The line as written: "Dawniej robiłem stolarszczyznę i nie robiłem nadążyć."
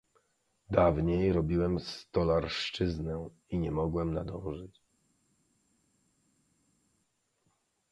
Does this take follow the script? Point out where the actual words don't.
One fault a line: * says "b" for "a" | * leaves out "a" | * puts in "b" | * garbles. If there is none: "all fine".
* says "mogłem" for "robiłem"